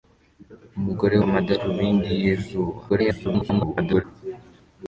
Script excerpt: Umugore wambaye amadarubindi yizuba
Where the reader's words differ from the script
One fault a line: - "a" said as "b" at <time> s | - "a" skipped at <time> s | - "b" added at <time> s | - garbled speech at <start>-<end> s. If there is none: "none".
- "wambaye" skipped at 1.1 s
- garbled speech at 2.9-4.0 s